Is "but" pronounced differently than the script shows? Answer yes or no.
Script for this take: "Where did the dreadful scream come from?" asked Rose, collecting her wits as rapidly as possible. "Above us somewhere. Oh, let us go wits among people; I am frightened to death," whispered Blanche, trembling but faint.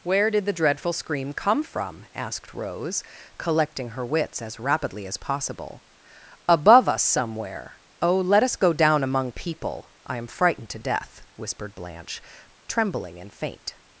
yes